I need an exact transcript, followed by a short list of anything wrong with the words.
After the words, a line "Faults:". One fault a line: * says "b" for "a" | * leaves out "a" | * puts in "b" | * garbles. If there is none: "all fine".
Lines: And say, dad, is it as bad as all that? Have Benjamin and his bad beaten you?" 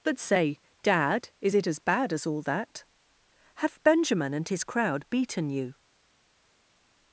But say, dad, is it as bad as all that? Have Benjamin and his crowd beaten you?"
Faults:
* says "But" for "And"
* says "crowd" for "bad"